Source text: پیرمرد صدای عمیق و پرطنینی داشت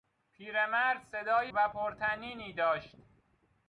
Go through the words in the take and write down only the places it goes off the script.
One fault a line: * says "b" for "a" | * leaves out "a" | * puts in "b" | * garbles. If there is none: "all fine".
* leaves out "عمیق"